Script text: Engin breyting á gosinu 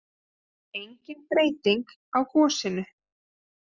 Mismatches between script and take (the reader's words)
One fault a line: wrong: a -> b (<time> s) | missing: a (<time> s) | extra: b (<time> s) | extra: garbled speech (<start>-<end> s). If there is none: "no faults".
no faults